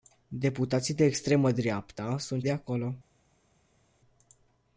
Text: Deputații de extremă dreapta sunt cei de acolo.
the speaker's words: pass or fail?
fail